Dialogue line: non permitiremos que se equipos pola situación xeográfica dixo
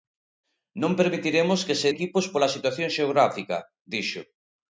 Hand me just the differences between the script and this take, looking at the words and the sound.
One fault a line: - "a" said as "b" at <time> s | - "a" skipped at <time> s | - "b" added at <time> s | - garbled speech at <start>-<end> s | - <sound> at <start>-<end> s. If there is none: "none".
none